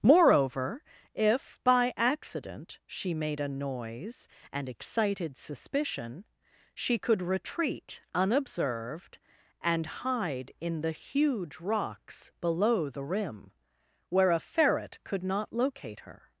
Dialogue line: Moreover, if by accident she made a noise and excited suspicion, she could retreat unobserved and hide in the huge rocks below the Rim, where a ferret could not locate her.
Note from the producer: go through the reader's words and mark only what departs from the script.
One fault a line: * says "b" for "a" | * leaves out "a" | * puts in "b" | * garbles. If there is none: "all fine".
all fine